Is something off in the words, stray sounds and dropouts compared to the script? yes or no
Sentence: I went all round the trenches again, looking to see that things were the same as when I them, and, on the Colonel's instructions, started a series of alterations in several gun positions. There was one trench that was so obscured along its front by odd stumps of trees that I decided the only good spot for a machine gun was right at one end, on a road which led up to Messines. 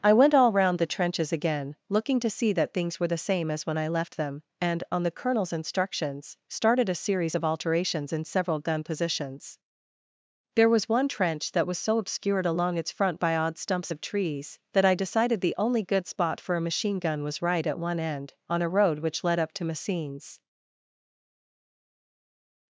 yes